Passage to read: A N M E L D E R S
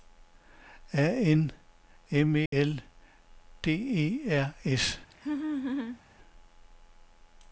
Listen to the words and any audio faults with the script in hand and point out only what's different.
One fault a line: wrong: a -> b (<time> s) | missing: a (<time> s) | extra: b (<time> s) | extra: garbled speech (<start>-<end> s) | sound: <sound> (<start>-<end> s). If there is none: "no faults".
sound: dropout (2.5-2.5 s)
sound: laugh (5.1-6.0 s)